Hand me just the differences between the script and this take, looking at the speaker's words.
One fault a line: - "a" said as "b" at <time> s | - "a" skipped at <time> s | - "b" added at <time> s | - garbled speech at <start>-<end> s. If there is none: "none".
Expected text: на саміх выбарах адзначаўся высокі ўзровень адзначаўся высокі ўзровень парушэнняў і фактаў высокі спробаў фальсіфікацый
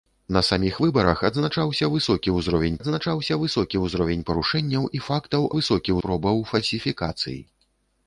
none